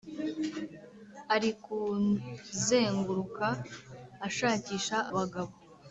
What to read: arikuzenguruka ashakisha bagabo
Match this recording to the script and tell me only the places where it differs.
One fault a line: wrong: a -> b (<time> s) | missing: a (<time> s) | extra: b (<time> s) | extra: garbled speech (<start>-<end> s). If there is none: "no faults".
no faults